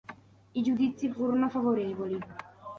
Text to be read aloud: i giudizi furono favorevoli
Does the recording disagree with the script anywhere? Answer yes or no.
no